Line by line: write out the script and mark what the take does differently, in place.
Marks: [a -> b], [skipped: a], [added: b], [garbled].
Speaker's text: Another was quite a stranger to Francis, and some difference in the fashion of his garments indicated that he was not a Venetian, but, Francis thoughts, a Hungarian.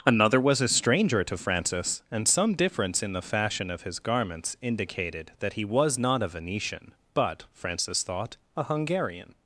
Another was [skipped: quite] a stranger to Francis, and some difference in the fashion of his garments indicated that he was not a Venetian, but, Francis [thoughts, -> thought] a Hungarian.